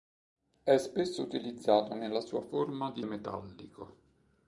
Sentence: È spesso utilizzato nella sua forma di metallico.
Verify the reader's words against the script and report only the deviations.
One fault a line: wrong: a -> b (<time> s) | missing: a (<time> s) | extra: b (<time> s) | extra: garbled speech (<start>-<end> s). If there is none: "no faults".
no faults